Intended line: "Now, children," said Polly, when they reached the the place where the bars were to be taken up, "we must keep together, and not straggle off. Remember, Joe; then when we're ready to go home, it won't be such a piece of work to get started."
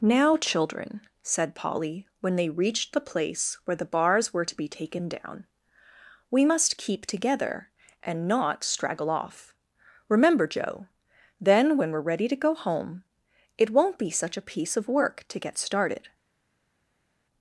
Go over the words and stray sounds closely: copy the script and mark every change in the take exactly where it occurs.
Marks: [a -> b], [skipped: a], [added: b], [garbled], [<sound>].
"Now, children," said Polly, when they reached the [skipped: the] place where the bars were to be taken [up, -> down] "we must keep together, and not straggle off. Remember, Joe; then when we're ready to go home, it won't be such a piece of work to get started."